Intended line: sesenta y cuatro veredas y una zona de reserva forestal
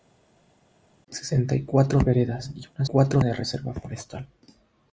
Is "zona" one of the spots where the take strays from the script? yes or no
yes